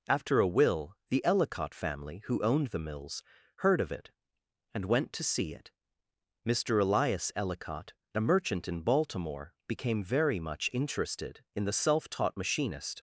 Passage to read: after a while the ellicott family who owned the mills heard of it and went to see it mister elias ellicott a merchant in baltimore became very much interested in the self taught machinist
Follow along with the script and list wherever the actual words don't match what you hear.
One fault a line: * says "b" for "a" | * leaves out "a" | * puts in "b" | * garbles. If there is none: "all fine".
* says "will" for "while"